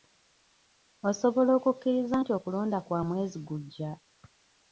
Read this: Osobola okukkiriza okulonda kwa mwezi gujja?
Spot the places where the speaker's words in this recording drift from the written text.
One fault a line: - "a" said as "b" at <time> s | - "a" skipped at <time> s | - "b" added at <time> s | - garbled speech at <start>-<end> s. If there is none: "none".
- "nti" added at 2.2 s